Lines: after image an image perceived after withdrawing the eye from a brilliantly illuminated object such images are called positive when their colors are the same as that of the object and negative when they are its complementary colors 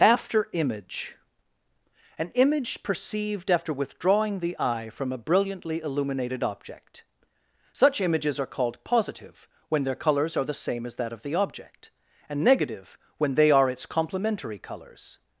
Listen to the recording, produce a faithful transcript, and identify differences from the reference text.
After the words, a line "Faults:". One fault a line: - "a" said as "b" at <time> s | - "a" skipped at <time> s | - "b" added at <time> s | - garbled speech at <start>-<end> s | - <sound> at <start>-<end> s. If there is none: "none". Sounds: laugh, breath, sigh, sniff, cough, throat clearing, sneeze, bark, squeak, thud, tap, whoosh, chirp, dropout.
after image an image perceived after withdrawing the eye from a brilliantly illuminated object such images are called positive when their colors are the same as that of the object and negative when they are its complementary colors
Faults:
none